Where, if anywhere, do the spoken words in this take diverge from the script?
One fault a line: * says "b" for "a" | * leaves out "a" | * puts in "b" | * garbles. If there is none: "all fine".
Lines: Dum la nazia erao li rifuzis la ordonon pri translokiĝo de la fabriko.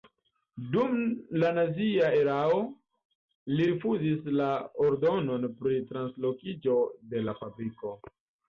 all fine